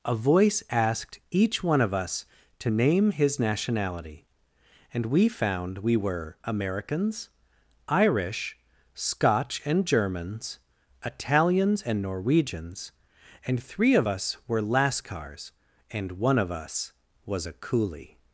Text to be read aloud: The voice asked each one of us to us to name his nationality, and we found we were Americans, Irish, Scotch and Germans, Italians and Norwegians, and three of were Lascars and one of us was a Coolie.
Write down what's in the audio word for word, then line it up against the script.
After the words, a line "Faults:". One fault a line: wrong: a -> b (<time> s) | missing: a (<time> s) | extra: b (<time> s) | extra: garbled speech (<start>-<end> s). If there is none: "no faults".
A voice asked each one of us to name his nationality, and we found we were Americans, Irish, Scotch and Germans, Italians and Norwegians, and three of us were Lascars and one of us was a Coolie.
Faults:
wrong: The -> A (0.0 s)
missing: us to (2.7 s)
extra: us (14.1 s)